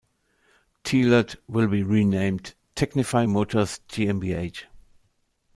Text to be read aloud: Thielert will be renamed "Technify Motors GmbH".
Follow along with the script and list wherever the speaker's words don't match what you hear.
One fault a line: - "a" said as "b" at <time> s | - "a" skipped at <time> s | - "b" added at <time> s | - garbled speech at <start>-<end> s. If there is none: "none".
none